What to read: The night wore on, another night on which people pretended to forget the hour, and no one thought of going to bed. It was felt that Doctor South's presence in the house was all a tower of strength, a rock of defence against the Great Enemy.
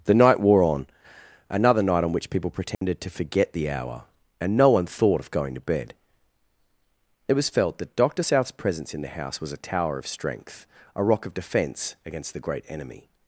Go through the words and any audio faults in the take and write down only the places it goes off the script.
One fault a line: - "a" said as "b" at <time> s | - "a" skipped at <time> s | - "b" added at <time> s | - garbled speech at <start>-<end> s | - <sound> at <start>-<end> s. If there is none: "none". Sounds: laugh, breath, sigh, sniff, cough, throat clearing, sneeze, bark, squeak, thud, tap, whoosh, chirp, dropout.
- dropout at 2.7-2.8 s
- "all" skipped at 9.5 s